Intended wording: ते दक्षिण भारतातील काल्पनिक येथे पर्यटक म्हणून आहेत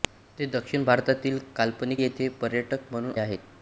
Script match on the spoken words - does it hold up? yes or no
yes